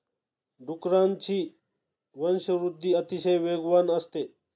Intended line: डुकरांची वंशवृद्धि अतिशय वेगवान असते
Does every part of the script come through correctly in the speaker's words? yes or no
yes